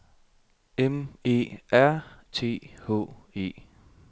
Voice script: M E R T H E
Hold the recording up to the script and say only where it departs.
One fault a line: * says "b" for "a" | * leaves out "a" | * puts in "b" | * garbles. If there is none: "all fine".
all fine